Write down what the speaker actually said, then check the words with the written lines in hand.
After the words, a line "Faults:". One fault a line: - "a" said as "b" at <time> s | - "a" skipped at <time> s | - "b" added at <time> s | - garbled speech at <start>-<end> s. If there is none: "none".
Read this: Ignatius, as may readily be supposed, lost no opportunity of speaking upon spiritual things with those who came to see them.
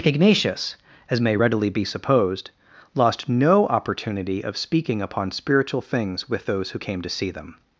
Ignatius, as may readily be supposed, lost no opportunity of speaking upon spiritual things with those who came to see them.
Faults:
none